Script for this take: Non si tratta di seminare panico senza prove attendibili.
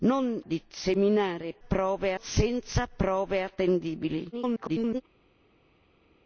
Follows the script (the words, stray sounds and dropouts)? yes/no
no